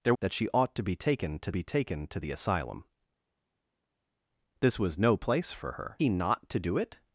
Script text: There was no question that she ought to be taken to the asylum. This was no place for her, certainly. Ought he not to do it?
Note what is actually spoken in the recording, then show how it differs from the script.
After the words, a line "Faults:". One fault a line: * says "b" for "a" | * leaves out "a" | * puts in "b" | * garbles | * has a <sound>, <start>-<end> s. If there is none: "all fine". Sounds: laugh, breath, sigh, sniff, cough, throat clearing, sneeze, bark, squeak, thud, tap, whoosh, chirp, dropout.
There that she ought to be taken to be taken to the asylum. This was no place for her, he not to do it?
Faults:
* leaves out "was no question"
* puts in "be taken to"
* leaves out "certainly Ought"